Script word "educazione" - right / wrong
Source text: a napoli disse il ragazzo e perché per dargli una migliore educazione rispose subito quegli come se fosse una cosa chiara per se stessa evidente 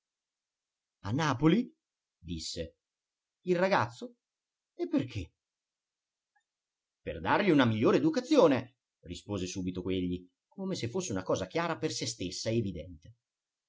right